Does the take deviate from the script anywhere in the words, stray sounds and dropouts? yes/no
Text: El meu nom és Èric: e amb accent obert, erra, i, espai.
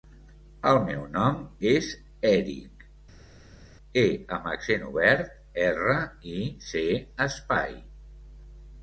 yes